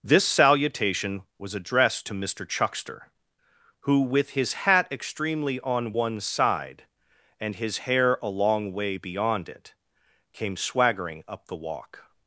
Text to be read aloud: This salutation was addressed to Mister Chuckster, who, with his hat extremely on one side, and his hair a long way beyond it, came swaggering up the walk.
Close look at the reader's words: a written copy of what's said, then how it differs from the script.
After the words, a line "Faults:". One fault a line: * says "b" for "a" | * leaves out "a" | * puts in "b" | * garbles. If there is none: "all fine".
This salutation was addressed to Mister Chuckster, who, with his hat extremely on one side, and his hair a long way beyond it, came swaggering up the walk.
Faults:
all fine